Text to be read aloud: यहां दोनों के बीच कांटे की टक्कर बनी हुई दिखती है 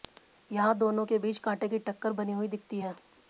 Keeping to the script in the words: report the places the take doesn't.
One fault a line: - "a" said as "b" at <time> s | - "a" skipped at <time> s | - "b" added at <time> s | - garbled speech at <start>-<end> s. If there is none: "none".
none